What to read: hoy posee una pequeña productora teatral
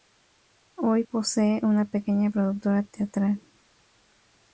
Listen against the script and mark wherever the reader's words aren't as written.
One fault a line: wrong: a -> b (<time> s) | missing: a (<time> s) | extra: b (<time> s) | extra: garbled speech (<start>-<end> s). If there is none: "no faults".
no faults